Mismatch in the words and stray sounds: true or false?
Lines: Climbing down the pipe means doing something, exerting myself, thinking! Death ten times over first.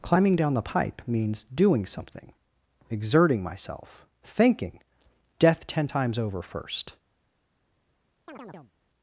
true